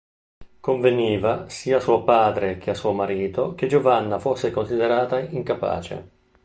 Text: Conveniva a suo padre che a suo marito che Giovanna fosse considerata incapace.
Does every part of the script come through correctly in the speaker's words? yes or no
no